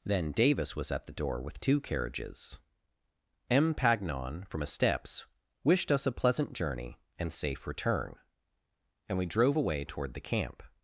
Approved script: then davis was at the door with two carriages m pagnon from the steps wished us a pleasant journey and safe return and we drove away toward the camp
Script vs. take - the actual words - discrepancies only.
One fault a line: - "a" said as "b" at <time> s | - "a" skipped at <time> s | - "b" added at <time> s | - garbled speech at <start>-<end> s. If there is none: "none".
- "the" said as "a" at 4.6 s